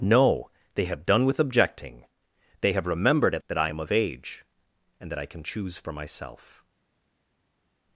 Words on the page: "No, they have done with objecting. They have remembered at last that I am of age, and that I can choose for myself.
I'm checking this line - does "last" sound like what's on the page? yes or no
no